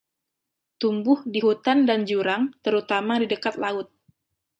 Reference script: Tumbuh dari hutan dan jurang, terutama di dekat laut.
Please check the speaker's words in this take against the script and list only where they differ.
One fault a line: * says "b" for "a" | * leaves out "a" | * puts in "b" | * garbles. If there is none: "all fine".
* says "di" for "dari"